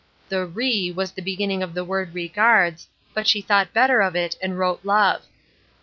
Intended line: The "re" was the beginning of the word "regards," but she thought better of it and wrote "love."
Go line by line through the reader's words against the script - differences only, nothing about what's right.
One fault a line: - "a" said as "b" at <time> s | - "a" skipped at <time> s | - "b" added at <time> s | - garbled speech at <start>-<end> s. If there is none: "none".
none